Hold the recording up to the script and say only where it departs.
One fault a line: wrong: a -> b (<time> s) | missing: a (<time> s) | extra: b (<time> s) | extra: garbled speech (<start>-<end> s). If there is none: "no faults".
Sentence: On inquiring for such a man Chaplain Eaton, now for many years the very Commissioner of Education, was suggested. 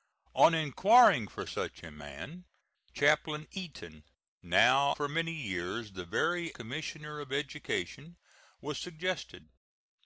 no faults